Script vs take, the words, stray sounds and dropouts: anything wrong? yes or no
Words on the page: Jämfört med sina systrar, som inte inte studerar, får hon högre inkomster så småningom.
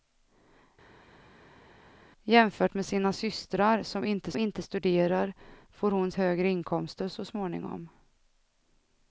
no